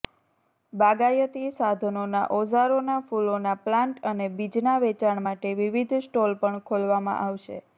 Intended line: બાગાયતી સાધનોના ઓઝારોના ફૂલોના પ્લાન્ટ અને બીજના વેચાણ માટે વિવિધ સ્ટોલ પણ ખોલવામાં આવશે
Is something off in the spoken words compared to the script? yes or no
no